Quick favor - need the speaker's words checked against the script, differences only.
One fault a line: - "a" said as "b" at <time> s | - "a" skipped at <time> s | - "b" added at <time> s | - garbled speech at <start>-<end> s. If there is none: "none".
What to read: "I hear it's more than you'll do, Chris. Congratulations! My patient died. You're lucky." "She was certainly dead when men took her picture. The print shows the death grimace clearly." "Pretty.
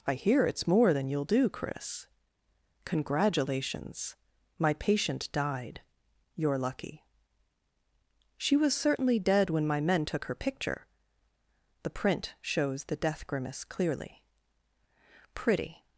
- "my" added at 9.7 s